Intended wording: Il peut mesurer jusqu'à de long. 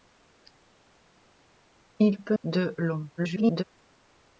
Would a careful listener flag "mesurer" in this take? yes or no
yes